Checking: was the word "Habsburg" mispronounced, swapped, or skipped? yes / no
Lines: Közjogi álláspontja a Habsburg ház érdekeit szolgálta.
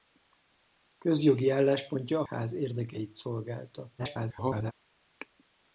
yes